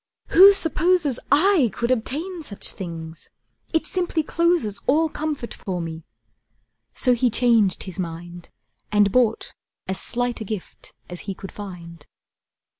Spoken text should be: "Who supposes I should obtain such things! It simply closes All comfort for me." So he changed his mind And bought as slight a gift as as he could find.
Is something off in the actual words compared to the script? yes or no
yes